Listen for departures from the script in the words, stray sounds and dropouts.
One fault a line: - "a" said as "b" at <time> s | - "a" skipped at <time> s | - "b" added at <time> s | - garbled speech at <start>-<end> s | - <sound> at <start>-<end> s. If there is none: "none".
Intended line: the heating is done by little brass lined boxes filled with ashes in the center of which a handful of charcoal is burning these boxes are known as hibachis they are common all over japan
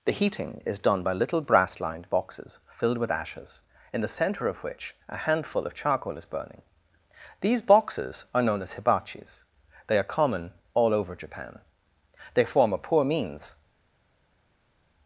- "they form a poor means" added at 12.3 s